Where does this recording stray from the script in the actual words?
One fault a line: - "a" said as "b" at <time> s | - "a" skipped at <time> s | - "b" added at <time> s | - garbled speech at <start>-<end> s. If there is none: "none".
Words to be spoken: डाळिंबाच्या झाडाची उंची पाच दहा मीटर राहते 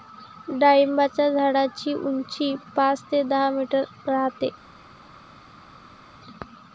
- "ते" added at 3.1 s